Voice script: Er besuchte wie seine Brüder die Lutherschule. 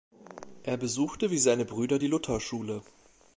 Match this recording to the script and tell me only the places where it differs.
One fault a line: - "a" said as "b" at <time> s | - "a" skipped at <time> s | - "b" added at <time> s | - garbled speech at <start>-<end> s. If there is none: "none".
none